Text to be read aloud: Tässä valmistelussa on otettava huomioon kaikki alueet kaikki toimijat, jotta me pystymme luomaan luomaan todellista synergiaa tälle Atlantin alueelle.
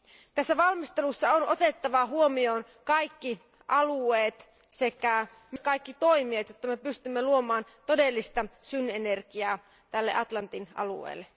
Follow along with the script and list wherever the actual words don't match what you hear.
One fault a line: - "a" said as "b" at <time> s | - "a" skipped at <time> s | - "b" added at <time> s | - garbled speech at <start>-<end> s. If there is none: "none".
- "sekä" added at 4.7 s
- "luomaan" skipped at 7.7 s